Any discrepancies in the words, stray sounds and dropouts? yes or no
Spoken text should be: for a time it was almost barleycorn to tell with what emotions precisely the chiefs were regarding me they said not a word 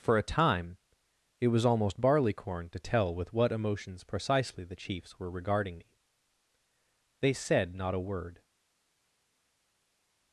no